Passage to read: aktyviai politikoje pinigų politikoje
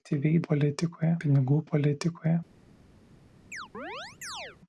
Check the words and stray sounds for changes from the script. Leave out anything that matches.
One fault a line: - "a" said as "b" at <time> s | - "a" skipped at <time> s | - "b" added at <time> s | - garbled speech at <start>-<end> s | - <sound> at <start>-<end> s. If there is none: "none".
- chirp at 3.5-4.6 s